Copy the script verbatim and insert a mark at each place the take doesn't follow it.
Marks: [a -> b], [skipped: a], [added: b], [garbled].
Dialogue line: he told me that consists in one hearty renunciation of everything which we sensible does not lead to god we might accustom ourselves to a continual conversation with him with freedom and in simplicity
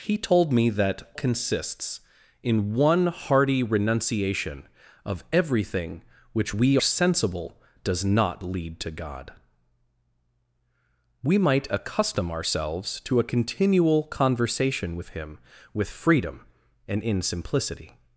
he told me that consists in one hearty renunciation of everything which we sensible does not lead to god we might accustom ourselves to a continual conversation with him with freedom and in simplicity